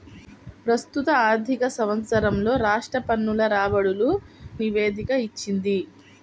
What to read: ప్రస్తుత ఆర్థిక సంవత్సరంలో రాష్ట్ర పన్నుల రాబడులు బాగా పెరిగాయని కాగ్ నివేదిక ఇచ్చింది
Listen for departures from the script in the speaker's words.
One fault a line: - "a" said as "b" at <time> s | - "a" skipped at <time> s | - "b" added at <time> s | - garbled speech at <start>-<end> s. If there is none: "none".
- "బాగా పెరిగాయని కాగ్" skipped at 4.1 s